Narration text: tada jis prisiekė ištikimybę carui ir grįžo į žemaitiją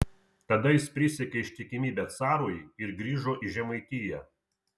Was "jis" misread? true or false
false